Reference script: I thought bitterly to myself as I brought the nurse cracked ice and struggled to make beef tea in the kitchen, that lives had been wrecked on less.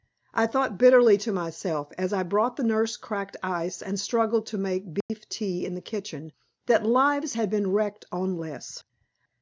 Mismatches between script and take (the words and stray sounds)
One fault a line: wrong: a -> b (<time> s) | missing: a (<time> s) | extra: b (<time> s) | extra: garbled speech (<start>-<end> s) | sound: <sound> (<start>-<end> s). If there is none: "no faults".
sound: dropout (5.0-5.1 s)